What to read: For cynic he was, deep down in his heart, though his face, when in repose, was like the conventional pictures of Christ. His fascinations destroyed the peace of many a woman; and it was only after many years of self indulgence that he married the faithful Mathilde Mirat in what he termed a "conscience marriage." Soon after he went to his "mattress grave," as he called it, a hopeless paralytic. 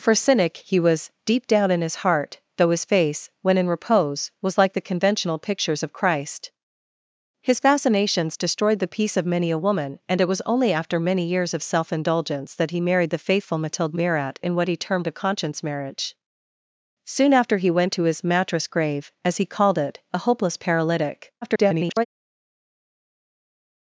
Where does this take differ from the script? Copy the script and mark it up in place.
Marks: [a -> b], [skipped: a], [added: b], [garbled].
For cynic he was, deep down in his heart, though his face, when in repose, was like the conventional pictures of Christ. His fascinations destroyed the peace of many a woman; and it was only after many years of self indulgence that he married the faithful Mathilde Mirat in what he termed a "conscience marriage." Soon after he went to his "mattress grave," as he called it, a hopeless paralytic. [garbled]